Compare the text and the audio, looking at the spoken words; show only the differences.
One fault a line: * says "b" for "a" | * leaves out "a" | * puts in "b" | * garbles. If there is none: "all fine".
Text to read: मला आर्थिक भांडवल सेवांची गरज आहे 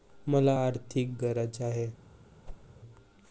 * leaves out "भांडवल सेवांची"